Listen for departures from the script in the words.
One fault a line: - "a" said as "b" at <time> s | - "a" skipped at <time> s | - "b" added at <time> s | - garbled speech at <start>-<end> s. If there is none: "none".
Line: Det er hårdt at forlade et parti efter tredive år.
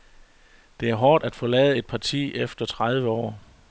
none